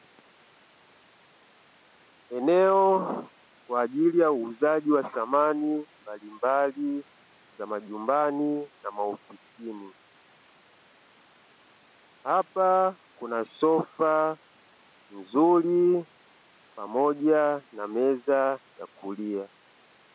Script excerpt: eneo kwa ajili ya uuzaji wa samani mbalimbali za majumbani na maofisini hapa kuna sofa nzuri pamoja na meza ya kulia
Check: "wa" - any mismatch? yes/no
no